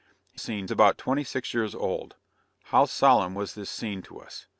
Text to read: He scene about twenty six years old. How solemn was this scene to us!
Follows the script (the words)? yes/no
yes